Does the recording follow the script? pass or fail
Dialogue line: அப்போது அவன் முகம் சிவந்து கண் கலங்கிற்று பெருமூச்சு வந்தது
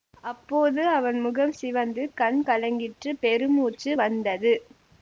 pass